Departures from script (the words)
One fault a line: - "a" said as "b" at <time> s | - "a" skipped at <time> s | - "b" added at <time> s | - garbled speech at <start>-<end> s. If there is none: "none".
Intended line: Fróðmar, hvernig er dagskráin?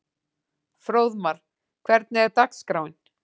none